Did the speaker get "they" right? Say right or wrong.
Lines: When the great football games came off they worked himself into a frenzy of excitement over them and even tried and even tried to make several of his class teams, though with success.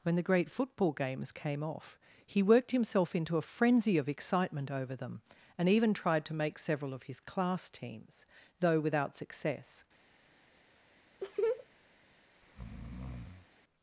wrong